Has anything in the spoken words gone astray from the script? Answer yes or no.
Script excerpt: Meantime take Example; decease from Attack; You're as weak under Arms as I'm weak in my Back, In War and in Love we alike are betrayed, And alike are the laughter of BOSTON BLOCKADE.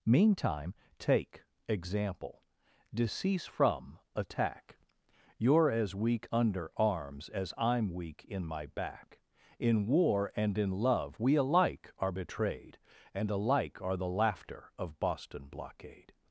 no